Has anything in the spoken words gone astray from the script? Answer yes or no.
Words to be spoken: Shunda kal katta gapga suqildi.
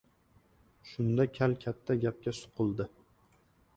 no